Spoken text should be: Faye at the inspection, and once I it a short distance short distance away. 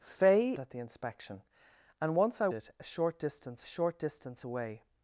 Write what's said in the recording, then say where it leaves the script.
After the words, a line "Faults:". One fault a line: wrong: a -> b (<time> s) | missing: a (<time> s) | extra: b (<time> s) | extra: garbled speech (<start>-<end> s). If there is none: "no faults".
Faye at the inspection, and once I it a short distance short distance away.
Faults:
no faults